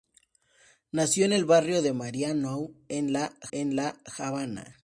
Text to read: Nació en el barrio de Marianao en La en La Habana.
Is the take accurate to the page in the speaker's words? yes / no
yes